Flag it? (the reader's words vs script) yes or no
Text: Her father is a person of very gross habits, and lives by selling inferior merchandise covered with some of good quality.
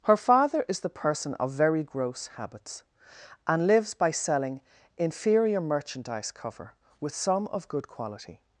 yes